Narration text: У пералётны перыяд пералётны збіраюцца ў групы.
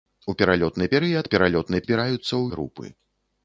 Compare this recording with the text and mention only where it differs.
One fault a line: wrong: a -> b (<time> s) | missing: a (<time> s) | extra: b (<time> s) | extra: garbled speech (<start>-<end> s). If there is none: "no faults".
no faults